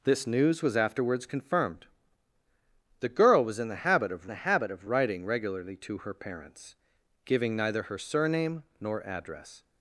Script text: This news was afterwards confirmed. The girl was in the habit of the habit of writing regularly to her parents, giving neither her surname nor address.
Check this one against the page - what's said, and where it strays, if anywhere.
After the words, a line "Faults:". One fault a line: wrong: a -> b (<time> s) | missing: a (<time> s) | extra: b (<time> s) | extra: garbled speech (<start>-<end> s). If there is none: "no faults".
This news was afterwards confirmed. The girl was in the habit of the habit of writing regularly to her parents, giving neither her surname nor address.
Faults:
no faults